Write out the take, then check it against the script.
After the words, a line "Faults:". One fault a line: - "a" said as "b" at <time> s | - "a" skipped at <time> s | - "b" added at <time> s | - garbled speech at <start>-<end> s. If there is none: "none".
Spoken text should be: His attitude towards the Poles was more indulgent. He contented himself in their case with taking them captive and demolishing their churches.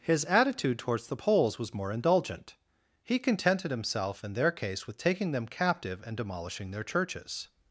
His attitude towards the Poles was more indulgent. He contented himself in their case with taking them captive and demolishing their churches.
Faults:
none